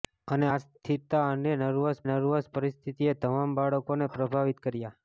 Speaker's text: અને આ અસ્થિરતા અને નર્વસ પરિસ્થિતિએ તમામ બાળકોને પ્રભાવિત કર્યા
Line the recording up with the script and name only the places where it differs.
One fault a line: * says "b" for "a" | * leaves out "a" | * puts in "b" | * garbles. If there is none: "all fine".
* leaves out "આ"
* puts in "નર્વસ"